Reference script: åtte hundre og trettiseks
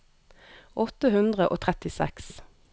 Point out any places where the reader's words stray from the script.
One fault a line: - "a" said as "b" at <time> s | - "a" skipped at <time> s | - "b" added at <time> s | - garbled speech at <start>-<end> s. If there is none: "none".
none